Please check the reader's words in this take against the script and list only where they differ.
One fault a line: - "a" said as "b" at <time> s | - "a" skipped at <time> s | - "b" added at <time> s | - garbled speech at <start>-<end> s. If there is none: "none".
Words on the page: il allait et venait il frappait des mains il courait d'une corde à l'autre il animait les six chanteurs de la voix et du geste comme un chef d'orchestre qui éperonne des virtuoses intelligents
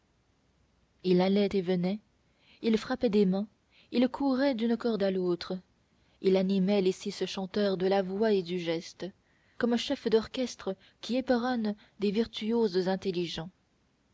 none